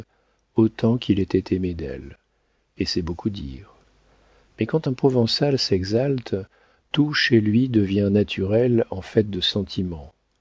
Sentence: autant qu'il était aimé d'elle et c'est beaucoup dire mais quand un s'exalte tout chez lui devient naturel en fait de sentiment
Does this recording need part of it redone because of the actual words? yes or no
yes